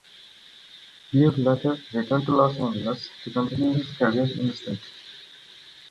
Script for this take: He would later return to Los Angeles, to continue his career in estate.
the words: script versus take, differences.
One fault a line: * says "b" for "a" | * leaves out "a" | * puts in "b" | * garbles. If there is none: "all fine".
all fine